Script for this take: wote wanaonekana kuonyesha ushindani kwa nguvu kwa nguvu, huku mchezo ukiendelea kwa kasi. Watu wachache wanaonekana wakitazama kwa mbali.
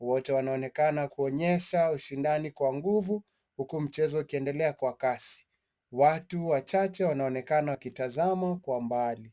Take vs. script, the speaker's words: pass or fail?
fail